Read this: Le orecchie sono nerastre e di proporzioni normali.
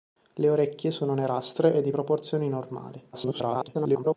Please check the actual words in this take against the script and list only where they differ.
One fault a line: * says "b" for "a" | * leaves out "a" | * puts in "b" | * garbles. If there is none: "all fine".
* garbles